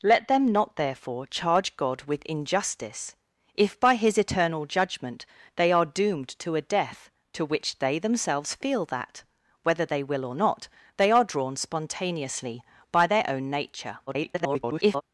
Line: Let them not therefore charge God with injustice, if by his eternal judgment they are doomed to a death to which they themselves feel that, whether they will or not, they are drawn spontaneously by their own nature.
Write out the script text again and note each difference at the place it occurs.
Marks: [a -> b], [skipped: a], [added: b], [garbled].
Let them not therefore charge God with injustice, if by his eternal judgment they are doomed to a death to which they themselves feel that, whether they will or not, they are drawn spontaneously by their own nature. [garbled]